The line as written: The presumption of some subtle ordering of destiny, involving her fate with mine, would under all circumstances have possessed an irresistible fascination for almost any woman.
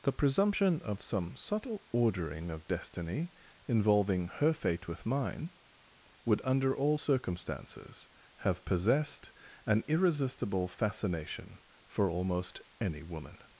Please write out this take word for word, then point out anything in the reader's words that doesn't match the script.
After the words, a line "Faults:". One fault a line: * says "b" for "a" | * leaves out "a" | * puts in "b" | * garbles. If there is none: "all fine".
The presumption of some subtle ordering of destiny, involving her fate with mine, would under all circumstances have possessed an irresistible fascination for almost any woman.
Faults:
all fine